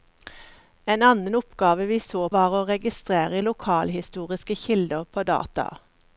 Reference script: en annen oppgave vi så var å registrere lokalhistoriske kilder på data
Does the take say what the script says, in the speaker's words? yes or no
yes